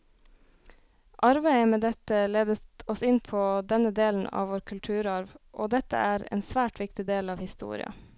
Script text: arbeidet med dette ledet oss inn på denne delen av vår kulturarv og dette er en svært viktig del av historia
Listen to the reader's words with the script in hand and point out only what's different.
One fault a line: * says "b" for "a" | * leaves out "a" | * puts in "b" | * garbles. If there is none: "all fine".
all fine